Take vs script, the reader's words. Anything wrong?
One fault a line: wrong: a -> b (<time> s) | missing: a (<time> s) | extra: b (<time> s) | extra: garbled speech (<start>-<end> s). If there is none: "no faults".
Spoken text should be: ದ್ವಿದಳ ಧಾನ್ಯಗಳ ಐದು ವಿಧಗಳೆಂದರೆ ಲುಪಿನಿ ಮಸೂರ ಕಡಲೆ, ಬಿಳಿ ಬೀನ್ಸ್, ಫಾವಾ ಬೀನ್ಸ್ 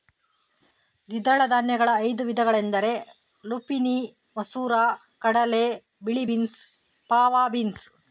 no faults